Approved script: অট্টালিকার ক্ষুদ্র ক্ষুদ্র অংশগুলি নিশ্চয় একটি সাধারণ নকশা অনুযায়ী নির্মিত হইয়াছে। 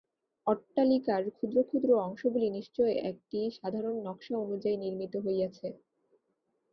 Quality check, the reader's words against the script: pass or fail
pass